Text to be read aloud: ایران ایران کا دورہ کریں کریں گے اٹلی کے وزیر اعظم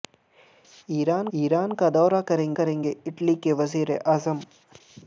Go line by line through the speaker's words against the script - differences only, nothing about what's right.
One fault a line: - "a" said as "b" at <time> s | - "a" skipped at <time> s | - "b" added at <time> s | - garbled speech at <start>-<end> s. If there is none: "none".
none